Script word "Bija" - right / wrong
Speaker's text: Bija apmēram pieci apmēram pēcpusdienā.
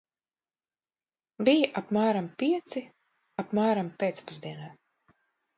right